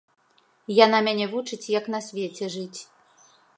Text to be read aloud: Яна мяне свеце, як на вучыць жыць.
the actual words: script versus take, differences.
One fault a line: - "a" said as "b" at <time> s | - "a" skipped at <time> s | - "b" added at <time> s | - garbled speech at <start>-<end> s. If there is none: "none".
- "свеце" said as "вучыць" at 1.4 s
- "вучыць" said as "свеце" at 2.1 s